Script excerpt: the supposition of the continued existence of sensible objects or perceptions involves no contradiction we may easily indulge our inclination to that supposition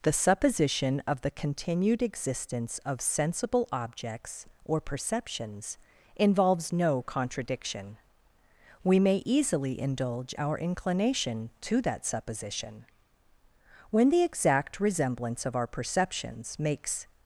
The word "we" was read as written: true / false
true